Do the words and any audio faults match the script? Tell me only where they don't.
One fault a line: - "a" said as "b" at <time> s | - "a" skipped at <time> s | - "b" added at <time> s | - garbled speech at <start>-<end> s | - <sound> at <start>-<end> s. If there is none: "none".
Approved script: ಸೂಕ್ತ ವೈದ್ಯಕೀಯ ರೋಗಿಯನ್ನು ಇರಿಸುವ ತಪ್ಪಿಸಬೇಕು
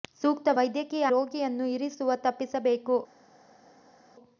none